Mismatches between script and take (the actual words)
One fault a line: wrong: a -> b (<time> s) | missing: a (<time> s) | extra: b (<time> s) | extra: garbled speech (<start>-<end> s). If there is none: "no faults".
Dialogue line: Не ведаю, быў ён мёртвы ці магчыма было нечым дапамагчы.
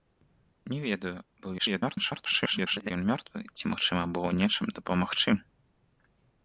extra: garbled speech (1.6-2.9 s)